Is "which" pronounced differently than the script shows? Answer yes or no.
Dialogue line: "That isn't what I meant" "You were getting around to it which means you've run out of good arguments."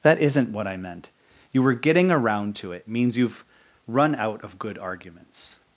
yes